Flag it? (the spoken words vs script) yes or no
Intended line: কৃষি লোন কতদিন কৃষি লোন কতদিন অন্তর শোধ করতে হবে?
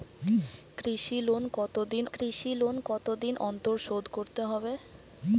no